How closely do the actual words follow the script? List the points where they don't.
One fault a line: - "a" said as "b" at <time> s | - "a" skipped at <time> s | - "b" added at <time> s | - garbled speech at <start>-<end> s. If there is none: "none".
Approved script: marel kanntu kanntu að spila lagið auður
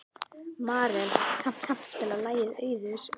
none